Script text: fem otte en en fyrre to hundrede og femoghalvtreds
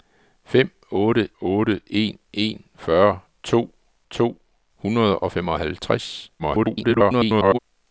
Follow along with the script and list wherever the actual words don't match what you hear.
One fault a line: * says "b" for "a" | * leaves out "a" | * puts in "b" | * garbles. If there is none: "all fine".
* puts in "otte"
* puts in "to"
* garbles